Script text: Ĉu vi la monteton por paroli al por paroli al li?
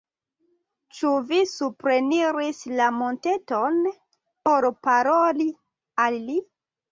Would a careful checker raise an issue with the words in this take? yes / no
yes